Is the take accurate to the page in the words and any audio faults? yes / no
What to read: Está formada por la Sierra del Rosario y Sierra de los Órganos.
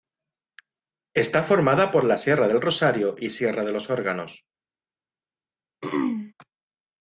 no